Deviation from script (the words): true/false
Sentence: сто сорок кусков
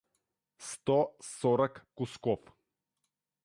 false